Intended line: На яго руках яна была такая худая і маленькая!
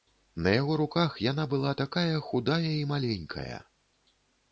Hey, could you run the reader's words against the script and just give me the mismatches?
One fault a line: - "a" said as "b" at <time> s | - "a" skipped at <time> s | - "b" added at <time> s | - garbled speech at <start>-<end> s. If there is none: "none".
none